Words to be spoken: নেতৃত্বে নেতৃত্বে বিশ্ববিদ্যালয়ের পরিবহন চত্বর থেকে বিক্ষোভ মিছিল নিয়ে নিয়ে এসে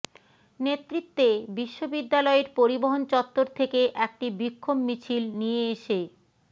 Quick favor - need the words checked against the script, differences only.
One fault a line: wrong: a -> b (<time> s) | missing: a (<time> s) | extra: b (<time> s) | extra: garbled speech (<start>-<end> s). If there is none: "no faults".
missing: নেতৃত্বে (1.3 s)
extra: একটি (4.0 s)
missing: নিয়ে (5.6 s)